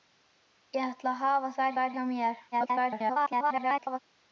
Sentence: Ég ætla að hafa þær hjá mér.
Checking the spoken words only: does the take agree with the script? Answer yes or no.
no